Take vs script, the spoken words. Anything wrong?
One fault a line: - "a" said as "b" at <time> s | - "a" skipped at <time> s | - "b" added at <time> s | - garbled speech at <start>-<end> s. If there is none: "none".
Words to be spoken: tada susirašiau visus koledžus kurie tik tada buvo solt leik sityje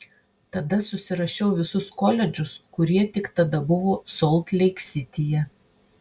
none